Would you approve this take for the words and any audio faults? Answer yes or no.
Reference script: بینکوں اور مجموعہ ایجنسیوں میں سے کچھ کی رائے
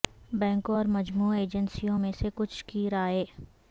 yes